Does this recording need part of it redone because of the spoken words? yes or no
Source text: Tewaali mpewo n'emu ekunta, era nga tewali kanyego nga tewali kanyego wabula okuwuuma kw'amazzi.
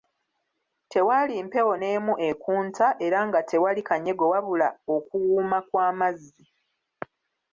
yes